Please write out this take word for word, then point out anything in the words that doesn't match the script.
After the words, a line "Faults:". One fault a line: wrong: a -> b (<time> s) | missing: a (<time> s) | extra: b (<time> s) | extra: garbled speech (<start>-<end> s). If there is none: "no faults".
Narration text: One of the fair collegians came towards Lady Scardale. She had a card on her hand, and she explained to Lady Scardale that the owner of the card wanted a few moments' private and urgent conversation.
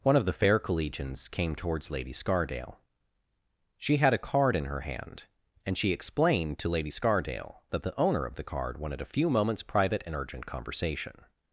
One of the fair collegians came towards Lady Scardale. She had a card in her hand, and she explained to Lady Scardale that the owner of the card wanted a few moments' private and urgent conversation.
Faults:
wrong: on -> in (4.5 s)